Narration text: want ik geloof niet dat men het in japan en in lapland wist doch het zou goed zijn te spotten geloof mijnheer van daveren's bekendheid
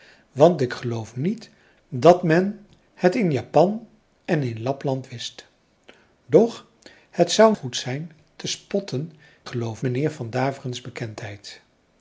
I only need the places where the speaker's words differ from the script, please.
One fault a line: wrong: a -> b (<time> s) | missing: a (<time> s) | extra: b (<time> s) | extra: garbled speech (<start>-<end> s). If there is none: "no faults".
no faults